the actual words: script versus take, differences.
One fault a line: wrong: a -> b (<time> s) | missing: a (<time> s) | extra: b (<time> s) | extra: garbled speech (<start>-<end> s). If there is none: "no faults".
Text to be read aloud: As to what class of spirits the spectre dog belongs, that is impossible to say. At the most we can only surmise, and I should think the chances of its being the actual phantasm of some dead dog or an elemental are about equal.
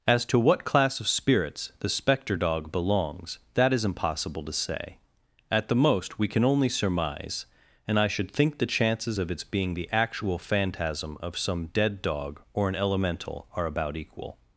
no faults